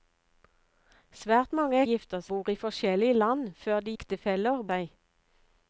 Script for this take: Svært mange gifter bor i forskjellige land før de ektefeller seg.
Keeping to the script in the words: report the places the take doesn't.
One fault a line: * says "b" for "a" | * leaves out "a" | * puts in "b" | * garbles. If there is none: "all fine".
all fine